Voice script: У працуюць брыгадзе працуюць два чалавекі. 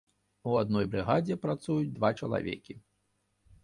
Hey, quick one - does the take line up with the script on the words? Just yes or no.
no